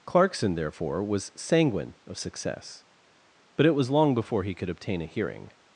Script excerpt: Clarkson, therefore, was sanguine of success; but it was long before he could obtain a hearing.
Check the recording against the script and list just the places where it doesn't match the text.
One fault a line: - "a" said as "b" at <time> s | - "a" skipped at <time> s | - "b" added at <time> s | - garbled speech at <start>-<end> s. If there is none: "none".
none